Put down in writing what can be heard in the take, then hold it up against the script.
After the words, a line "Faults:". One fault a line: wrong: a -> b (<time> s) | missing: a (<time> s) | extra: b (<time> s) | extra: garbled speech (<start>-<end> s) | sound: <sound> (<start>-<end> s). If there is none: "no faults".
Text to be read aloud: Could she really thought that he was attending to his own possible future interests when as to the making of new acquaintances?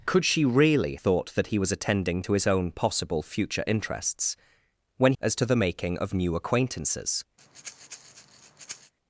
Could she really thought that he was attending to his own possible future interests when as to the making of new acquaintances?
Faults:
sound: breath (7.4-8.9 s)